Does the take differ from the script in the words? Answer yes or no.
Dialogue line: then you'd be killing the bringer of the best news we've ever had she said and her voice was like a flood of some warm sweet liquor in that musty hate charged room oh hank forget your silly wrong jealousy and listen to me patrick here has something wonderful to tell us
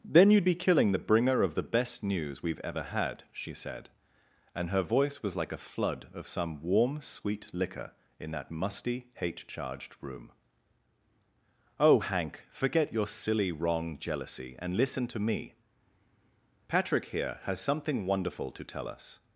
no